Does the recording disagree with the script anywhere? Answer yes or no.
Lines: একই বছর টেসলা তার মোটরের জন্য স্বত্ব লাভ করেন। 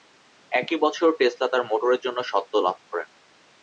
no